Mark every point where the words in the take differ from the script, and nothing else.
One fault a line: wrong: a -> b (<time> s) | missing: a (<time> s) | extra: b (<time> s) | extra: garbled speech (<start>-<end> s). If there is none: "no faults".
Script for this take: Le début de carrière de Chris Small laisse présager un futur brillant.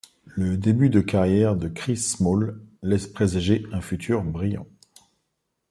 no faults